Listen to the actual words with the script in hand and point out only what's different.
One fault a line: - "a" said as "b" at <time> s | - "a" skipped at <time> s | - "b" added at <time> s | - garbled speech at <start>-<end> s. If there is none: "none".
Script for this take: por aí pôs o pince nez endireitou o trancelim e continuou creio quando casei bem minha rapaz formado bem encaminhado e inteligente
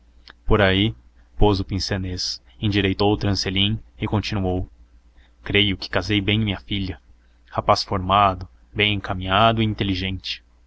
- "quando" said as "que" at 5.7 s
- "filha" added at 6.6 s